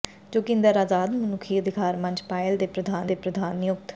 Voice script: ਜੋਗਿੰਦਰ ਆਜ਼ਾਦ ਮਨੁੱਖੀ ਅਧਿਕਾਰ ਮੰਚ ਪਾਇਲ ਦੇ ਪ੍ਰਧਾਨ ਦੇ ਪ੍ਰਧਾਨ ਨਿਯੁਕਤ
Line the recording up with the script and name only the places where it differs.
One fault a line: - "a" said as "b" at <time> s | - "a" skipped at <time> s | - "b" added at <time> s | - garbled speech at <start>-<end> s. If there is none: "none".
none